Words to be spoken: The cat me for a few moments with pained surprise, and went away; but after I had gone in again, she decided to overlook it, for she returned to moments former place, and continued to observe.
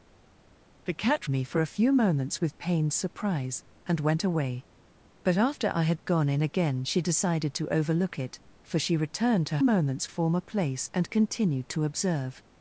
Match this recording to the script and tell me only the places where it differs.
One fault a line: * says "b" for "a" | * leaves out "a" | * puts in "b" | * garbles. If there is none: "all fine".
all fine